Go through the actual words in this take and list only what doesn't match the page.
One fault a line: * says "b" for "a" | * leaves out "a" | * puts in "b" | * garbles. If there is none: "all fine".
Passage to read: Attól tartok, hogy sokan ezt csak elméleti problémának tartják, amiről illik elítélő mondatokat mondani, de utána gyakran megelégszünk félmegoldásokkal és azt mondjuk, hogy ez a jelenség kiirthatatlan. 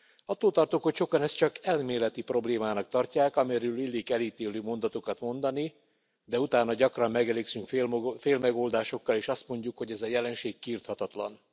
all fine